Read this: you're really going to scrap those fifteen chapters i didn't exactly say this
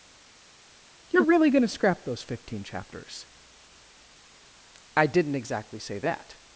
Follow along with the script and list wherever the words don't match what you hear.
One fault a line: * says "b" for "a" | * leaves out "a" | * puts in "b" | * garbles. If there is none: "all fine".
* says "that" for "this"